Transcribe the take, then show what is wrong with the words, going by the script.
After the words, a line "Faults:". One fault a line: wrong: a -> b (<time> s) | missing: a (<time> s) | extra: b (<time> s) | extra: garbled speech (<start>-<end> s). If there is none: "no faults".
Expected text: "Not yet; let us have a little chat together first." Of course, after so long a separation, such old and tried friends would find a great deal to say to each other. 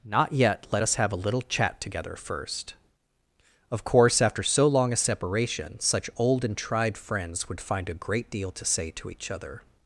"Not yet; let us have a little chat together first." Of course, after so long a separation, such old and tried friends would find a great deal to say to each other.
Faults:
no faults